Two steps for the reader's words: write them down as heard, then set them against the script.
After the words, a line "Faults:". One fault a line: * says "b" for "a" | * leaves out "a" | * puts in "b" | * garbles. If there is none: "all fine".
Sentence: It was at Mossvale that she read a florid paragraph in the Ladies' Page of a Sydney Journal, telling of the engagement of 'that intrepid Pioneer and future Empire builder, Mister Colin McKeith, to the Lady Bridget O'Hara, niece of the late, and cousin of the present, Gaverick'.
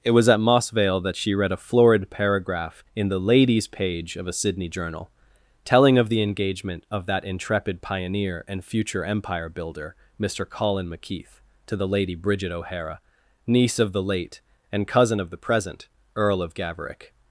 It was at Mossvale that she read a florid paragraph in the Ladies' Page of a Sydney Journal, telling of the engagement of 'that intrepid Pioneer and future Empire builder, Mister Colin McKeith, to the Lady Bridget O'Hara, niece of the late, and cousin of the present, Earl of Gaverick'.
Faults:
* puts in "Earl of"